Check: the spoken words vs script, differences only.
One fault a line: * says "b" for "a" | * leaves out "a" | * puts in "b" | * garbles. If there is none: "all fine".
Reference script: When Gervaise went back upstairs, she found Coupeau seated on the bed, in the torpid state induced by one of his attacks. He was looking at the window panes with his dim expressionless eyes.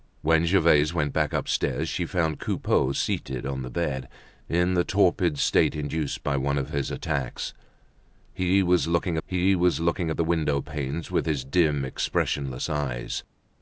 * puts in "he was looking"